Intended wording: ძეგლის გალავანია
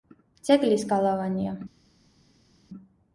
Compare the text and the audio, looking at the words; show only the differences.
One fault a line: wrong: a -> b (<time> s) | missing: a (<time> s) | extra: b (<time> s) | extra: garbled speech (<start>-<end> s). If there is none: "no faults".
no faults